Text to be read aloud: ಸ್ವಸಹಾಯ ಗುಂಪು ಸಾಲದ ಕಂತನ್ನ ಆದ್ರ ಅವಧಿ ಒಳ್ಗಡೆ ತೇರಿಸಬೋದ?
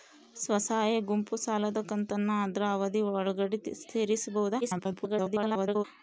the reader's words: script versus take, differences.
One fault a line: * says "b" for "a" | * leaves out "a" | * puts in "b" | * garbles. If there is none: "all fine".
* garbles